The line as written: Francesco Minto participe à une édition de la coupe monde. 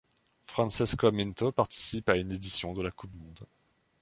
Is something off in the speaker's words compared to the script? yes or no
no